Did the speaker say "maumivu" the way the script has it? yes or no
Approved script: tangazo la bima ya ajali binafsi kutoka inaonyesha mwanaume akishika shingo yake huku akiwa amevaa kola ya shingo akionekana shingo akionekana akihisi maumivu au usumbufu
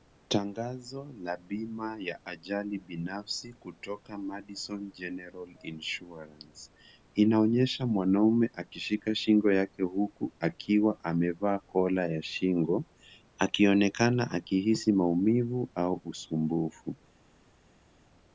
yes